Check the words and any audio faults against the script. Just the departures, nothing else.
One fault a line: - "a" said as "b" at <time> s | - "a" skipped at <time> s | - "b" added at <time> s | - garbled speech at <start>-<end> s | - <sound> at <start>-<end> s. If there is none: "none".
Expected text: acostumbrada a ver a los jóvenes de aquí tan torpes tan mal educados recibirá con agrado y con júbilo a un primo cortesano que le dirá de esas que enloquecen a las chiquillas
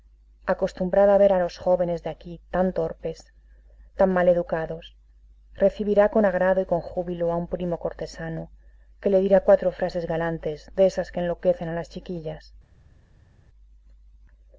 - "cuatro frases galantes" added at 9.4 s